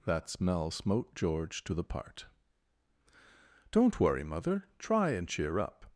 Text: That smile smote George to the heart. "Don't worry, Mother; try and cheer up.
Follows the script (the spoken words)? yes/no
no